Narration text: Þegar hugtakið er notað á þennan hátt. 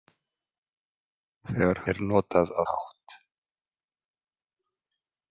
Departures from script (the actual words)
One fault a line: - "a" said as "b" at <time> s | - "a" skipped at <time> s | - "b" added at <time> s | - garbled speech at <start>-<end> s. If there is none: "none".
- "hugtakið" skipped at 1.8 s
- "þennan" skipped at 2.6 s